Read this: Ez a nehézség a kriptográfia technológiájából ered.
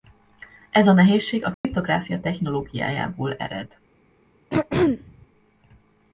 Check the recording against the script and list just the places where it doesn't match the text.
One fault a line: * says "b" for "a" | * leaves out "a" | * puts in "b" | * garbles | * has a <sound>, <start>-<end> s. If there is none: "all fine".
* has a dropout, 1.5-1.6 s
* has a throat clearing, 4.5-5.3 s